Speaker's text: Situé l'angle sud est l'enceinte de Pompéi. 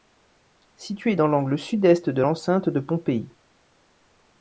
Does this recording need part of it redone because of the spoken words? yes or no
yes